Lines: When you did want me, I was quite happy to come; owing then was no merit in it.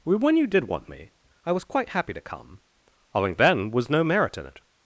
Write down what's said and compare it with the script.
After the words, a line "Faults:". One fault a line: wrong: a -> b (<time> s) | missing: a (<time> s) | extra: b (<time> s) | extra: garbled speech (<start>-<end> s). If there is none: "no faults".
When you did want me, I was quite happy to come; owing then was no merit in it.
Faults:
no faults